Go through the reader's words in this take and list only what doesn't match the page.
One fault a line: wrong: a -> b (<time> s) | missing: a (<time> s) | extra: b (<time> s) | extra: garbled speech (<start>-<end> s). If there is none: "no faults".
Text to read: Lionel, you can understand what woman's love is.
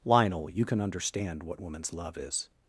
no faults